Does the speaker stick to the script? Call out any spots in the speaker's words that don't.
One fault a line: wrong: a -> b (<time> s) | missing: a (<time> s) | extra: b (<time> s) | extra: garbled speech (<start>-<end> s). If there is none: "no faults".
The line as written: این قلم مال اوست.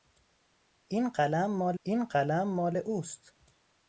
extra: این قلم مال (1.8 s)